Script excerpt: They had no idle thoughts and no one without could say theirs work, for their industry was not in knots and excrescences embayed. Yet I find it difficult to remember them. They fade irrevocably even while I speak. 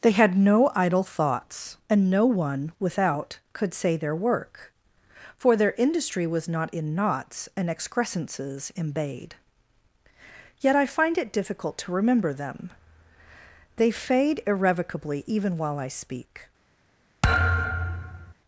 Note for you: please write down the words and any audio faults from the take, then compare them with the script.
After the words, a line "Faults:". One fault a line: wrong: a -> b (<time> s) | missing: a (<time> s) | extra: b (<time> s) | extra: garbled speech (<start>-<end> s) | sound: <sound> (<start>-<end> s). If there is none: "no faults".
They had no idle thoughts and no one without could say their work, for their industry was not in knots and excrescences embayed. Yet I find it difficult to remember them. They fade irrevocably even while I speak.
Faults:
wrong: theirs -> their (4.0 s)
sound: thud (17.2-18.3 s)